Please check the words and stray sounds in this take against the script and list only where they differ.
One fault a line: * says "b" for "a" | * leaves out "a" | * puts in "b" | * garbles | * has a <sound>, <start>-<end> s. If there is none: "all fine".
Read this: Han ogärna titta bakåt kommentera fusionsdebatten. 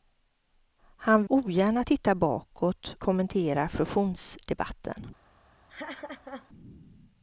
* has a laugh, 5.7-6.5 s